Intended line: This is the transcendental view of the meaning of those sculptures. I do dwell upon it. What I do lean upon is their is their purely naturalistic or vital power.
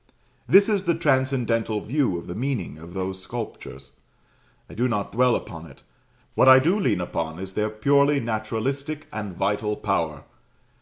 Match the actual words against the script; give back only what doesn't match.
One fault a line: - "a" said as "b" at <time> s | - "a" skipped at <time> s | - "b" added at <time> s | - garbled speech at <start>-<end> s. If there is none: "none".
- "not" added at 4.9 s
- "is their" skipped at 7.7 s
- "or" said as "and" at 9.1 s